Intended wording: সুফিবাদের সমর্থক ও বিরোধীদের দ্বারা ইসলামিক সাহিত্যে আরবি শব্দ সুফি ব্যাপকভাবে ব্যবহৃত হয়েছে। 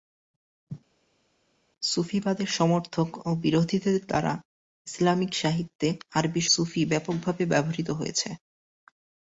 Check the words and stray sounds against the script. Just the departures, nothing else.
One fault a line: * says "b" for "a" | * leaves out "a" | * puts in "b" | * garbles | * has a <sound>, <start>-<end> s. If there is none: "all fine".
* leaves out "শব্দ"